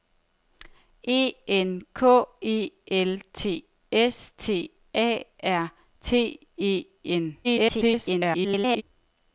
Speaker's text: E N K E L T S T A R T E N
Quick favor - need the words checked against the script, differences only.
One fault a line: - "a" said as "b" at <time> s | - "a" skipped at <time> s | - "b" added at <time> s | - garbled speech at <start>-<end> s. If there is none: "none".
- garbled speech at 7.4-8.8 s